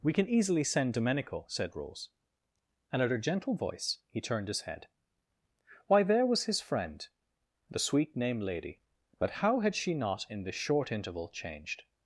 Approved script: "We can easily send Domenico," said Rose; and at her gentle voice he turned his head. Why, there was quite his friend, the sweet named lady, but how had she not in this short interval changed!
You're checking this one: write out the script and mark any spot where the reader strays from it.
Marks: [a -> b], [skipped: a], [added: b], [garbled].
"We can easily send Domenico," said Rose; and at her gentle voice he turned his head. Why, there was [skipped: quite] his friend, the sweet named lady, but how had she not in this short interval changed!